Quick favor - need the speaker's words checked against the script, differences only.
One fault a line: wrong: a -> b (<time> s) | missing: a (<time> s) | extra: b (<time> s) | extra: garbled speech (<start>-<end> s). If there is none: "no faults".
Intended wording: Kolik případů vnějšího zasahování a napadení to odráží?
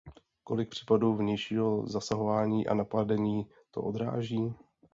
no faults